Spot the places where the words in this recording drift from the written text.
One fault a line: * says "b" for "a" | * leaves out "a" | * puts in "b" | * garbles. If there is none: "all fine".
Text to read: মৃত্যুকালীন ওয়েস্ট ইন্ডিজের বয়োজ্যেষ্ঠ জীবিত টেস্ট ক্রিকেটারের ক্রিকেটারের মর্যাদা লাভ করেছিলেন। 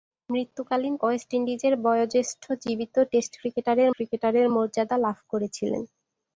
all fine